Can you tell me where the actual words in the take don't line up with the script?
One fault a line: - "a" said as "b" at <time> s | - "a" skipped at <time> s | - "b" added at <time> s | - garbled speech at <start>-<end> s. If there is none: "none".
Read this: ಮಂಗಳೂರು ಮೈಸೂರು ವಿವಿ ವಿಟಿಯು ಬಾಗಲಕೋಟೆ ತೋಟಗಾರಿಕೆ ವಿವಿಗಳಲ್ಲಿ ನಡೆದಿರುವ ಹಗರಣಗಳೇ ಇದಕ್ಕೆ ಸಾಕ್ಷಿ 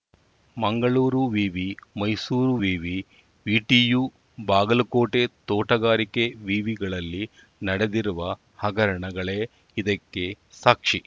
- "ವಿವಿ" added at 1.3 s